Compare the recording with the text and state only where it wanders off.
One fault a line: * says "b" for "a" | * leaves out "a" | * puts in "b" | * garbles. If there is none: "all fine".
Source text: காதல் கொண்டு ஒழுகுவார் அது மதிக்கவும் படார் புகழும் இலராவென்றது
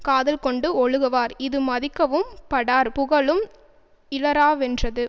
* says "இது" for "அது"